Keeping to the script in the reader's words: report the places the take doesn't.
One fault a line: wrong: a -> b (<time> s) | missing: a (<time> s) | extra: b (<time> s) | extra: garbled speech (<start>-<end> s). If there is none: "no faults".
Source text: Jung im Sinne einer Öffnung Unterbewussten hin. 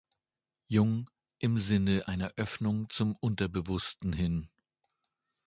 extra: zum (2.9 s)